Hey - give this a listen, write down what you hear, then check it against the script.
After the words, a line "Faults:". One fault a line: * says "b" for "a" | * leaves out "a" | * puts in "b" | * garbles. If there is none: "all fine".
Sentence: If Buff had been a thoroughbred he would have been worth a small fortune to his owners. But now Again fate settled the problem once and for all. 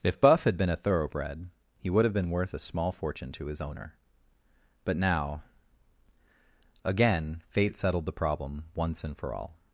If Buff had been a thoroughbred he would have been worth a small fortune to his owner. But now Again fate settled the problem once and for all.
Faults:
* says "owner" for "owners"